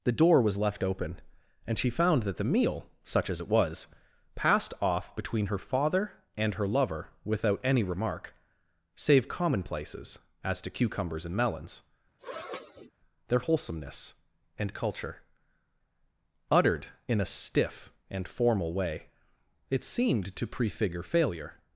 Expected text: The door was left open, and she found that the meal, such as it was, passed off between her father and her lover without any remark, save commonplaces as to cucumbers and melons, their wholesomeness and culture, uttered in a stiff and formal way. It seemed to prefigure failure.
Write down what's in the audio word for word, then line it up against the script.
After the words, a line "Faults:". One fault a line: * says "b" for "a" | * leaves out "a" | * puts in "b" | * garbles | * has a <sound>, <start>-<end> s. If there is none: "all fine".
The door was left open, and she found that the meal, such as it was, passed off between her father and her lover without any remark, save commonplaces as to cucumbers and melons, their wholesomeness and culture, uttered in a stiff and formal way. It seemed to prefigure failure.
Faults:
* has a sniff, 12.2-12.9 s